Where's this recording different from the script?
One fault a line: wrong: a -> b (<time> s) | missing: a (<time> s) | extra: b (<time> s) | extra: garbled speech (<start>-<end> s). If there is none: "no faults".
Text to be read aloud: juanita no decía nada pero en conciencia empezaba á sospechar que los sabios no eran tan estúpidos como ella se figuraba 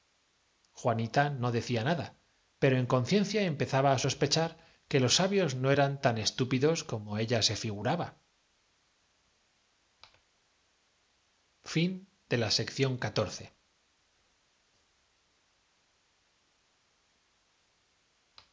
no faults